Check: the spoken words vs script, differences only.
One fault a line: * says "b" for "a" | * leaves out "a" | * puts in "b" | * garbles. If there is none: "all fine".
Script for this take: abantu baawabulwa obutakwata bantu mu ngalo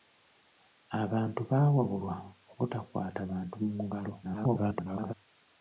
* garbles